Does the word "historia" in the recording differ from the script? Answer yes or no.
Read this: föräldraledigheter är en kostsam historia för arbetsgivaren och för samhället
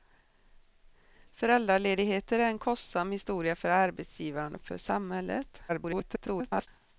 no